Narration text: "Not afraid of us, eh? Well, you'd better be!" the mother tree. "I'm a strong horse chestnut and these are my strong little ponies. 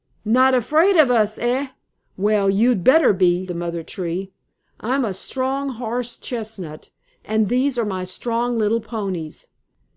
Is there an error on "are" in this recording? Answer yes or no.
no